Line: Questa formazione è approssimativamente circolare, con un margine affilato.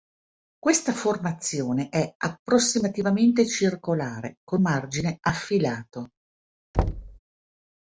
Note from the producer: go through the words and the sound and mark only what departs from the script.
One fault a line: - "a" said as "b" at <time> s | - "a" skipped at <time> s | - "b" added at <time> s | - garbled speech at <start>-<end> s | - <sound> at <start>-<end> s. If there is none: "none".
- "un" skipped at 4.6 s
- thud at 6.7-7.2 s